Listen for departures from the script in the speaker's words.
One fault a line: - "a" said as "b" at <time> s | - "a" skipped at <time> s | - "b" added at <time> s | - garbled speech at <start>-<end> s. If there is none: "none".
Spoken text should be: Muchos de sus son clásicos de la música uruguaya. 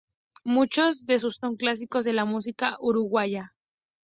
none